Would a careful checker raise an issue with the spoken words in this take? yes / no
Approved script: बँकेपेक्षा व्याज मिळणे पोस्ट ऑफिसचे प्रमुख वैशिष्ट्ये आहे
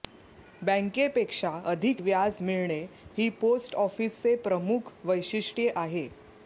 yes